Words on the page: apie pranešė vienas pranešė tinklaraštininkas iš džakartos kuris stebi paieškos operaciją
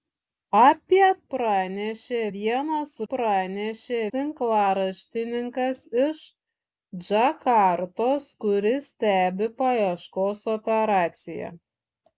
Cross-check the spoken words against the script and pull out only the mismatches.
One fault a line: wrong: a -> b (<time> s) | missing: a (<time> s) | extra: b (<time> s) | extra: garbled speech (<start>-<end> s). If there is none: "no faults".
no faults